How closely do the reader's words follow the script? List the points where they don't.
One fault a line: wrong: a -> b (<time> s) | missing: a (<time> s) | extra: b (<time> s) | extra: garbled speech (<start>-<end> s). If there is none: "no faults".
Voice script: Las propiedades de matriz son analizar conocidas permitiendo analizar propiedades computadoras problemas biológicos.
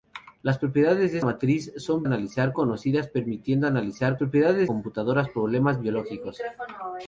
no faults